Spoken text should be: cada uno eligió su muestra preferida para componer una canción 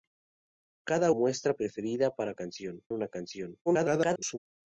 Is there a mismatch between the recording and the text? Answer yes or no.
yes